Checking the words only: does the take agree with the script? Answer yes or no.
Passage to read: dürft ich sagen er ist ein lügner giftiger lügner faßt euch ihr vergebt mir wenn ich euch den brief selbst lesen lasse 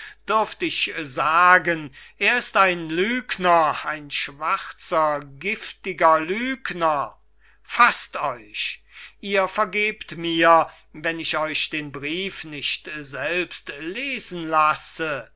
no